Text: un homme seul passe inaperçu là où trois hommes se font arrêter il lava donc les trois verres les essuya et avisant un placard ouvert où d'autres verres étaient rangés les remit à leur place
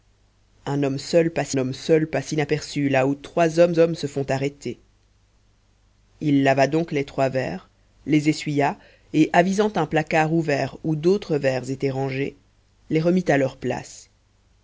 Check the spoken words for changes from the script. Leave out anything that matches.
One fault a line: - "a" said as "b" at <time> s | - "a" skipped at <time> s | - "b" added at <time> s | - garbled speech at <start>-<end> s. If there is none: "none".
- "homme seul passe" added at 1.5 s
- "hommes" added at 3.8 s